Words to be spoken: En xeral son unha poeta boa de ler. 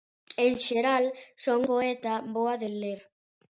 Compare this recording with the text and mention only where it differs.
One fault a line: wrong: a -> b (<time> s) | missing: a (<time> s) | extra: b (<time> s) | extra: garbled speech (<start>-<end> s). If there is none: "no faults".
missing: unha (1.6 s)